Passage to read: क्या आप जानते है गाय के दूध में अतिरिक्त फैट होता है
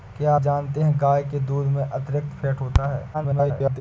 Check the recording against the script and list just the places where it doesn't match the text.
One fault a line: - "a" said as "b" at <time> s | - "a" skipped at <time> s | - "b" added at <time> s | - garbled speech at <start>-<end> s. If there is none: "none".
- "आप" skipped at 0.3 s
- garbled speech at 3.1-3.8 s